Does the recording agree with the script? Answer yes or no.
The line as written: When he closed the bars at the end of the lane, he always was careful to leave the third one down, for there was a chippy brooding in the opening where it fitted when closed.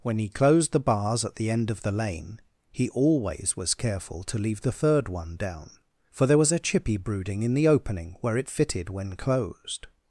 yes